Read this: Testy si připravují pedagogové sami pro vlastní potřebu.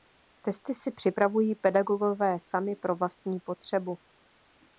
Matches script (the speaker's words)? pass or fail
pass